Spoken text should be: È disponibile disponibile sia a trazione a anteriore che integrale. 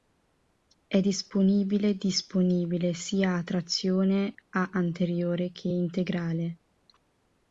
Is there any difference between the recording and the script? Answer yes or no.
no